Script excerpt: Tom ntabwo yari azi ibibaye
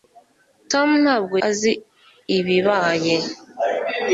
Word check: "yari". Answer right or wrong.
wrong